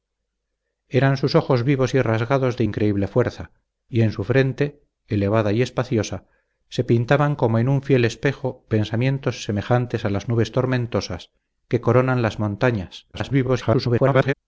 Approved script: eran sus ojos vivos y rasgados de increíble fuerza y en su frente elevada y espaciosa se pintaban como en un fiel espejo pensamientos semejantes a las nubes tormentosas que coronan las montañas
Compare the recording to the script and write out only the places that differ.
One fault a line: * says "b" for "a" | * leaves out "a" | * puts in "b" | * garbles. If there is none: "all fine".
* garbles